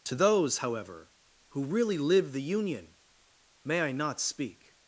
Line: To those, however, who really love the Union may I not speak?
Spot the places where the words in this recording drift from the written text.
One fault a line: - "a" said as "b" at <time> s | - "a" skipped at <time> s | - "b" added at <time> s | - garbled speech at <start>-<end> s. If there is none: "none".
- "love" said as "live" at 2.0 s